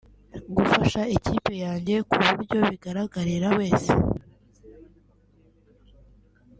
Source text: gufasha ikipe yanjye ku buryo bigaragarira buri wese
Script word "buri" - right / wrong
wrong